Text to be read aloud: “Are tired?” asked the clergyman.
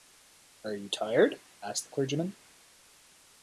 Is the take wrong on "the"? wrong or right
right